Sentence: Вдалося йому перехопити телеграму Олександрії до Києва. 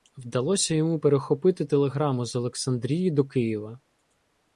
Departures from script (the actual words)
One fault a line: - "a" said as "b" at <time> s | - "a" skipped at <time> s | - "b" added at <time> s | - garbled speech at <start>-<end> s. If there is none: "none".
- "з" added at 2.2 s